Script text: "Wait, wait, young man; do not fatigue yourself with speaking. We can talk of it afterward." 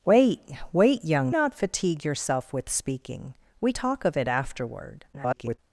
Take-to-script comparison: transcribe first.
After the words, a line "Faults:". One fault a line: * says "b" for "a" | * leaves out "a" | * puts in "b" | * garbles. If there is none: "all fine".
"Wait, wait, young not fatigue yourself with speaking. We talk of it afterward." [garbled]
Faults:
* leaves out "man do"
* leaves out "can"
* garbles